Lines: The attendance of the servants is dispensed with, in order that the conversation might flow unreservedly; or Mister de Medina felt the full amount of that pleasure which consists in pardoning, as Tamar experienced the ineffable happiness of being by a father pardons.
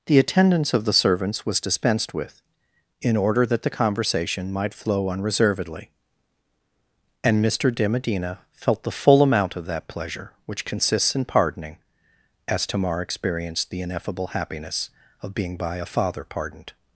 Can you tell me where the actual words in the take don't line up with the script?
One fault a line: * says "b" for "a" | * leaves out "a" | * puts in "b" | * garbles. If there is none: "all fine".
* says "was" for "is"
* says "and" for "or"
* says "pardoned" for "pardons"